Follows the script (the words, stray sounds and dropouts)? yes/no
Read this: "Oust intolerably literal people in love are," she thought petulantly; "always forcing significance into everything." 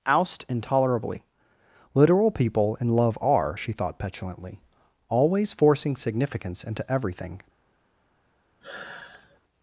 no